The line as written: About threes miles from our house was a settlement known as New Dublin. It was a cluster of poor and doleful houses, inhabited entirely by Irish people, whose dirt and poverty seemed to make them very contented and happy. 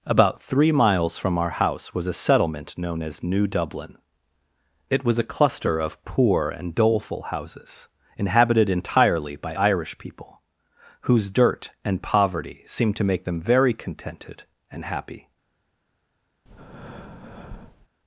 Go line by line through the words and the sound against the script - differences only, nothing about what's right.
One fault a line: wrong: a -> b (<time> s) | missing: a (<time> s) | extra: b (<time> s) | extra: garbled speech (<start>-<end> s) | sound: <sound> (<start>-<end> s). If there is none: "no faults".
wrong: threes -> three (0.4 s)
sound: breath (16.4-17.9 s)